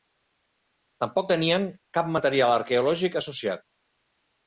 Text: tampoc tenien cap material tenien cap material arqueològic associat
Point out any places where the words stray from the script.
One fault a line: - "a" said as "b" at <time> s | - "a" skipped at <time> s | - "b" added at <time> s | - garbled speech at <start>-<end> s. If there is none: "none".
- "tenien cap material" skipped at 2.6 s